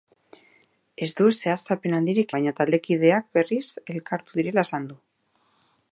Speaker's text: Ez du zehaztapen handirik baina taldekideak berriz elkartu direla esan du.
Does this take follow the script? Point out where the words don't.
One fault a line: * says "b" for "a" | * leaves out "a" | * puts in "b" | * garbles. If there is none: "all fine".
all fine